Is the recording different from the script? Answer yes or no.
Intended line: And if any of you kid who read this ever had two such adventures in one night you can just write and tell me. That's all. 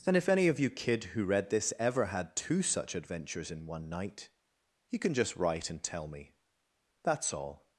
no